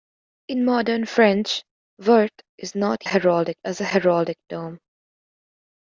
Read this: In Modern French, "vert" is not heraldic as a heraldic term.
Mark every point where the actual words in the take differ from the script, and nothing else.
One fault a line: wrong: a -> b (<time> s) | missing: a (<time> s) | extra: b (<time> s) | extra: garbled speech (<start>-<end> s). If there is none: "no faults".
no faults